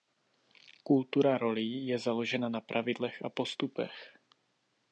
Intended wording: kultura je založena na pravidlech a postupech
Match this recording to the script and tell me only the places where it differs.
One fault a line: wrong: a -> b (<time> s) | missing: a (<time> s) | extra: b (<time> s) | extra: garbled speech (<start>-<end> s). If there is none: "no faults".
extra: rolí (1.4 s)